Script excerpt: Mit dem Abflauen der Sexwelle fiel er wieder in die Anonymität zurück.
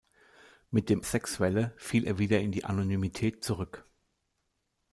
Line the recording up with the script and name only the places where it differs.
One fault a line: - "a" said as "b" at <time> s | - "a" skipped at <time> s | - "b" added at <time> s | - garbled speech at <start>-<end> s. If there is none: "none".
- "Abflauen der" skipped at 1.1 s